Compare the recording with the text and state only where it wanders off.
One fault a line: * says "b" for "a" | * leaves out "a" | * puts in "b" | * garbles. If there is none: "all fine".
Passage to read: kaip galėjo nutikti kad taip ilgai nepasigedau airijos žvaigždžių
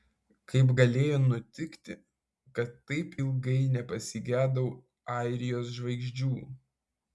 all fine